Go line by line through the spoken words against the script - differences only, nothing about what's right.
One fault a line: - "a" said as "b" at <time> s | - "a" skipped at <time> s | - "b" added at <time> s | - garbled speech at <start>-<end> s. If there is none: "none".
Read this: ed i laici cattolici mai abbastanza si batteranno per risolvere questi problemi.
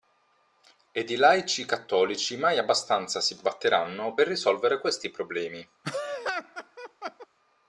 none